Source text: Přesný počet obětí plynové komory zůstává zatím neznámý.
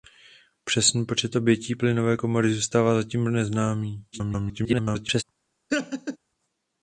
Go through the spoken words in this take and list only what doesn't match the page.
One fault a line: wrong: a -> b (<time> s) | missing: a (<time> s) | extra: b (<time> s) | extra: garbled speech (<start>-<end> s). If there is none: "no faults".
extra: garbled speech (4.1-5.2 s)